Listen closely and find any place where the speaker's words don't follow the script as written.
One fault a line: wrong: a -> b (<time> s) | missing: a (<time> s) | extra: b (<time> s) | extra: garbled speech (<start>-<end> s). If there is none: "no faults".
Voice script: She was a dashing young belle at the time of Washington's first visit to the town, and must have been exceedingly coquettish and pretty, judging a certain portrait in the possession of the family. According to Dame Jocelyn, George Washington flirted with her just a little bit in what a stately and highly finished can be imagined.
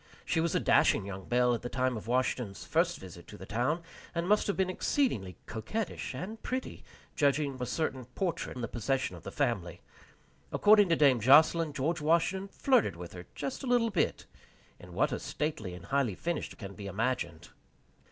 no faults